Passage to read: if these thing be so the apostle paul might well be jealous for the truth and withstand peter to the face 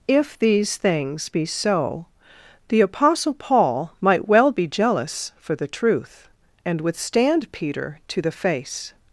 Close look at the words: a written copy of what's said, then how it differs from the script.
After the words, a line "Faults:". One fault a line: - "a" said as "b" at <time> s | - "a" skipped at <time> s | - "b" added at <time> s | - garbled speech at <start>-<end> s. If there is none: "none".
if these things be so the apostle paul might well be jealous for the truth and withstand peter to the face
Faults:
- "thing" said as "things" at 0.8 s